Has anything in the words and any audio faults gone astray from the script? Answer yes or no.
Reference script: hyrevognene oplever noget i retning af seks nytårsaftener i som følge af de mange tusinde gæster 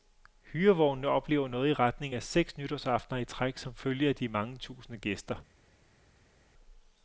yes